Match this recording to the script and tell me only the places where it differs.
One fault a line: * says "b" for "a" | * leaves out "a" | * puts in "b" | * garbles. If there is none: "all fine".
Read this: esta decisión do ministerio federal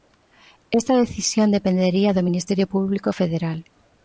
* puts in "dependería"
* puts in "público"